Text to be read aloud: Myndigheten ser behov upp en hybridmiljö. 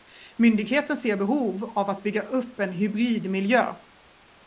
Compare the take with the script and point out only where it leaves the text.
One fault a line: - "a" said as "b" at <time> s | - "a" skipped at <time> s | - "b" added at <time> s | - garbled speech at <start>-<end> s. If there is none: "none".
- "av att bygga" added at 1.6 s